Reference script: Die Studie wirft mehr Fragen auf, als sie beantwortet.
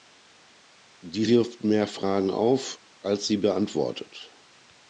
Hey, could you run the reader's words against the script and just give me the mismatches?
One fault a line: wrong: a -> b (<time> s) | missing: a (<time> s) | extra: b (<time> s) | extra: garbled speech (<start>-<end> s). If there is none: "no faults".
missing: Studie (1.3 s)